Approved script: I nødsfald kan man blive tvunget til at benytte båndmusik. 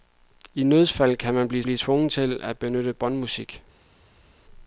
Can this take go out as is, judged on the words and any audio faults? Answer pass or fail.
fail